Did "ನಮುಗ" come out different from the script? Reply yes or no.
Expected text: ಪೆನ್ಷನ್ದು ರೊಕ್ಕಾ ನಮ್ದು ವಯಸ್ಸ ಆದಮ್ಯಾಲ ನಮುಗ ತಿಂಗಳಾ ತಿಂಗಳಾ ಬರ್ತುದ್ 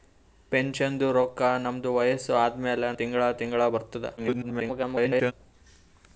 yes